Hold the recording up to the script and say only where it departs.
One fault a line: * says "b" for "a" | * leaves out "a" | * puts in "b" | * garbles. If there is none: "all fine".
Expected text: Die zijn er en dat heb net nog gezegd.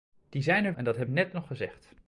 all fine